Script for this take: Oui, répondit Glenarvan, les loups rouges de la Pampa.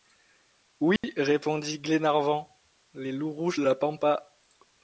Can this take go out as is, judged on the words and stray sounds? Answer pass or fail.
fail